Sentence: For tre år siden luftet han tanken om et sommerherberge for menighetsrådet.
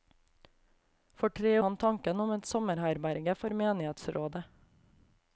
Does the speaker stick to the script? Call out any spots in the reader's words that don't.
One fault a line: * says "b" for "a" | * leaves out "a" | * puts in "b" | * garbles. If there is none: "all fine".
* leaves out "år siden luftet"